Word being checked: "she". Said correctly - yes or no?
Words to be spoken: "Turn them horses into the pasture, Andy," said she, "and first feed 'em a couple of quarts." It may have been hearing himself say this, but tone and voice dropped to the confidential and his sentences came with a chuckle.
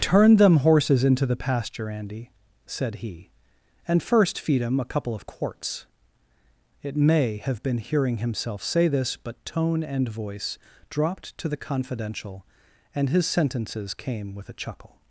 no